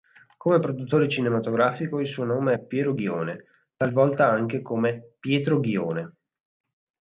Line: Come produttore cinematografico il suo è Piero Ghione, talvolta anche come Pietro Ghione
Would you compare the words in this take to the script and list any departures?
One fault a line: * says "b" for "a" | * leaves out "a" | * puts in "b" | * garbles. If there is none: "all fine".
* puts in "nome"